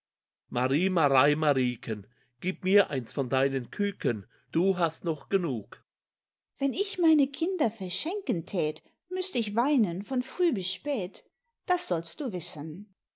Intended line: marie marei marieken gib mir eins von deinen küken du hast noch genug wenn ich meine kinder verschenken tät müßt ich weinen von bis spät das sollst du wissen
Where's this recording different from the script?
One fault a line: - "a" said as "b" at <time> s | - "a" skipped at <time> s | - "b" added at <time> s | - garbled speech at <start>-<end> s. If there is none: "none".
- "früh" added at 10.2 s